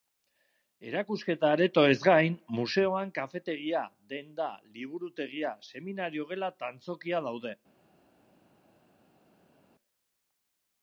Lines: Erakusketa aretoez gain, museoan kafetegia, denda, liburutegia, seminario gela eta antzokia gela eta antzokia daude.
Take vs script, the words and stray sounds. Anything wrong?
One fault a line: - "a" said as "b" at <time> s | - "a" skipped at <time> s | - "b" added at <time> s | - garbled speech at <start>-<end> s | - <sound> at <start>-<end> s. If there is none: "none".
- "gela eta antzokia" skipped at 7.3 s